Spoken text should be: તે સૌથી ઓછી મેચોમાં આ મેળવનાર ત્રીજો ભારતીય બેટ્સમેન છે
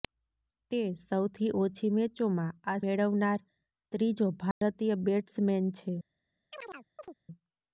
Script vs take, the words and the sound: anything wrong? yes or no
yes